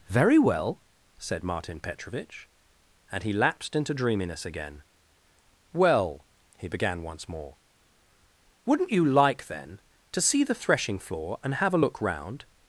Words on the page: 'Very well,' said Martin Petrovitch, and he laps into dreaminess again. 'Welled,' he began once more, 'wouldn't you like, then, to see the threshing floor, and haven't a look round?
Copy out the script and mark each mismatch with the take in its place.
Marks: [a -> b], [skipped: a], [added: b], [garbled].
'Very well,' said Martin Petrovitch, and he [laps -> lapsed] into dreaminess again. ['Welled,' -> Well] he began once more, 'wouldn't you like, then, to see the threshing floor, and [haven't -> have] a look round?